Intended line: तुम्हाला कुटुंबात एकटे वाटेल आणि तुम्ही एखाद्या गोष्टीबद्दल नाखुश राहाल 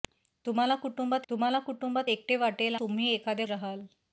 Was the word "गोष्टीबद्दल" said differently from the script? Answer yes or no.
yes